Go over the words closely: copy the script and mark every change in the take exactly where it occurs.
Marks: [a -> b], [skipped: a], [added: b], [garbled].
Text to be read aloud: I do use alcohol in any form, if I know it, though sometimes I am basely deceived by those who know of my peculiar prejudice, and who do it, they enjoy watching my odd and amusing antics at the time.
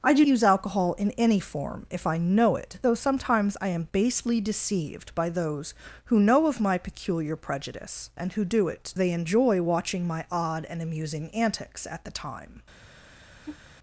I do use alcohol in any form, if I know it, though sometimes I am basely deceived by those who know of my peculiar prejudice, and who do it, they enjoy watching my odd and amusing antics at the time.